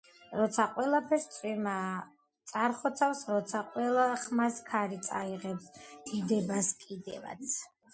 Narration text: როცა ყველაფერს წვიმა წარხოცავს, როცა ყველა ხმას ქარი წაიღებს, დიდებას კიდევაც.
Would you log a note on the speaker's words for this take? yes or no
no